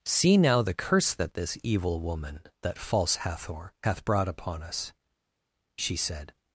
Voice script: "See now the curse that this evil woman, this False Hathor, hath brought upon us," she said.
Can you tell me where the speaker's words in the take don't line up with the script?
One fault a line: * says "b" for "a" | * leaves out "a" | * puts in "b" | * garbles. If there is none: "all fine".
* says "that" for "this"